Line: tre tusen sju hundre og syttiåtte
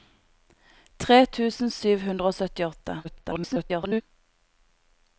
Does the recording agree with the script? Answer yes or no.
no